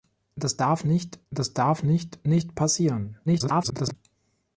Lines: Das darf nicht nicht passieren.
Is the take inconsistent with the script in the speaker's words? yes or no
yes